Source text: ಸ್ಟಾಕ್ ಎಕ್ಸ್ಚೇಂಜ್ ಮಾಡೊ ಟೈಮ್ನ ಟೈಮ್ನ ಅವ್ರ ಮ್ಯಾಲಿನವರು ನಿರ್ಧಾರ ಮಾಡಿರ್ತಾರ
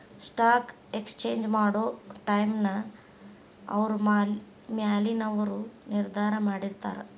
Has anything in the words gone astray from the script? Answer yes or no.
yes